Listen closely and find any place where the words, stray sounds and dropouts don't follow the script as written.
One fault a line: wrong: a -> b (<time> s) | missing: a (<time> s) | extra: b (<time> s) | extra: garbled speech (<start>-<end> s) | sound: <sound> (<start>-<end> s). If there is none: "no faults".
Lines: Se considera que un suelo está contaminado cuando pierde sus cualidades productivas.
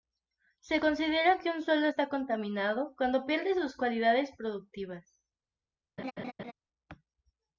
sound: laugh (6.0-6.5 s)